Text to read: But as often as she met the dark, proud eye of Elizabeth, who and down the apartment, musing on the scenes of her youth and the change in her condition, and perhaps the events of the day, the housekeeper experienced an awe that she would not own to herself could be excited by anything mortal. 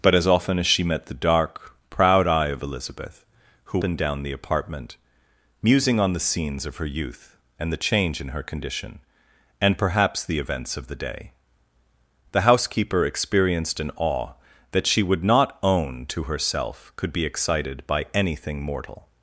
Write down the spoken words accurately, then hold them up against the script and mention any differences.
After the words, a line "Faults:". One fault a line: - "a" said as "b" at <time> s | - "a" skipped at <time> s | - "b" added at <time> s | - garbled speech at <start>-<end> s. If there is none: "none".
But as often as she met the dark, proud eye of Elizabeth, who and down the apartment, musing on the scenes of her youth and the change in her condition, and perhaps the events of the day, the housekeeper experienced an awe that she would not own to herself could be excited by anything mortal.
Faults:
none